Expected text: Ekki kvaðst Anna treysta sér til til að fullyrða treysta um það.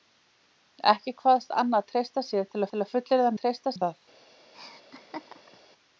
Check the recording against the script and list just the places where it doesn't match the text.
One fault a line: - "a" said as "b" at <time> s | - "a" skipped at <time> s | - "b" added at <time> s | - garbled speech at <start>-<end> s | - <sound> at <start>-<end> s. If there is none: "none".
- laugh at 4.5-5.6 s